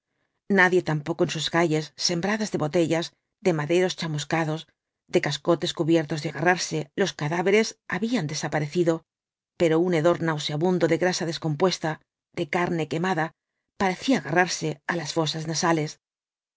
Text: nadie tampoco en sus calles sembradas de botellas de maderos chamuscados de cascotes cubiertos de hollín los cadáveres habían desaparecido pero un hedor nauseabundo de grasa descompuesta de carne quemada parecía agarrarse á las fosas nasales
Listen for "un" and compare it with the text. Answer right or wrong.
right